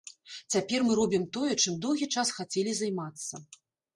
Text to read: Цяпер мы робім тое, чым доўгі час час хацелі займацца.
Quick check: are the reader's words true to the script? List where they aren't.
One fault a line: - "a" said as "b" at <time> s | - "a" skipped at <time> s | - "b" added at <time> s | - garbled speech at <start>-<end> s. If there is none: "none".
- "час" skipped at 2.3 s